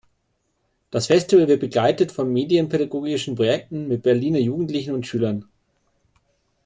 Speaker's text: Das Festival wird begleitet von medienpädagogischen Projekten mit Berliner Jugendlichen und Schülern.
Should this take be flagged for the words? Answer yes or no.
no